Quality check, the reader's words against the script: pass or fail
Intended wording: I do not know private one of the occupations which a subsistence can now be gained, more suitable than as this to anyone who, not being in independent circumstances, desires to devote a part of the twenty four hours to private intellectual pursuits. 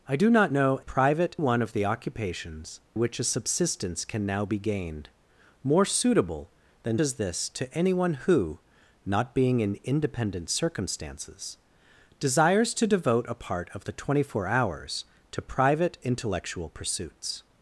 pass